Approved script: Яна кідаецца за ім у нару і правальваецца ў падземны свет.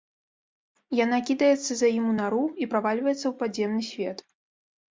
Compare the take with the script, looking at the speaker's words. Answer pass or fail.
pass